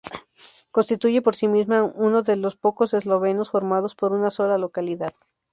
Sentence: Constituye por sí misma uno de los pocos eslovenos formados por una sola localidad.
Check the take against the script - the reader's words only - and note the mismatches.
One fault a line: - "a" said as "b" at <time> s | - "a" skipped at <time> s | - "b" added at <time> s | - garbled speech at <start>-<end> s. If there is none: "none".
none